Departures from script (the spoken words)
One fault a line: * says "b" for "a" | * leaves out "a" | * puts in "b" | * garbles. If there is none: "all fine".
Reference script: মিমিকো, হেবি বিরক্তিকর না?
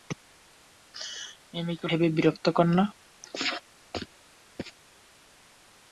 all fine